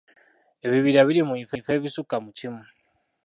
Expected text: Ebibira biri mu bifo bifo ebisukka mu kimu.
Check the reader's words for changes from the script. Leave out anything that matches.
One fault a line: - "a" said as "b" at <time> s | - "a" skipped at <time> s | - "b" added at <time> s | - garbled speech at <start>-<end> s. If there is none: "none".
none